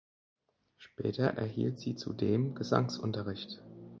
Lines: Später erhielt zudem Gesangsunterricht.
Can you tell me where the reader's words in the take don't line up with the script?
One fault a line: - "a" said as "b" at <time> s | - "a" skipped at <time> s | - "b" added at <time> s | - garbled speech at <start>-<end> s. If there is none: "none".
- "sie" added at 1.8 s